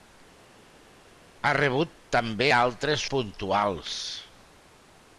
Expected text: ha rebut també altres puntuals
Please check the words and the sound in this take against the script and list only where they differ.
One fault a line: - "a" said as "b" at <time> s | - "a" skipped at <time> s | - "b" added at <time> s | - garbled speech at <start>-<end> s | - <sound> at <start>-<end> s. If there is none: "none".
none